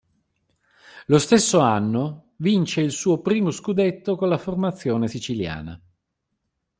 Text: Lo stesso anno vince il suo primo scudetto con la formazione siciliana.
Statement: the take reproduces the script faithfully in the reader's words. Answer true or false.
true